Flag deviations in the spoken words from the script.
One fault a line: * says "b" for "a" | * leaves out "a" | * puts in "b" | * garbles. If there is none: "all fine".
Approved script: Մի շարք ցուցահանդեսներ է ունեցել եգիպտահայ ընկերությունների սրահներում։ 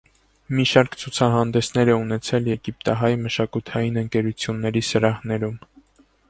* puts in "մշակութային"